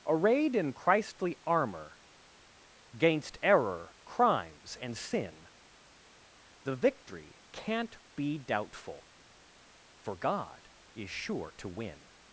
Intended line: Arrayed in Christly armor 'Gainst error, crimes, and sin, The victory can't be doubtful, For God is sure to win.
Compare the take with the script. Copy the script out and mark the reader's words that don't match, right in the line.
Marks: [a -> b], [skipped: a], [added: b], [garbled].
Arrayed in Christly armor 'Gainst error, crimes, and sin, The victory can't be doubtful, For God is sure to win.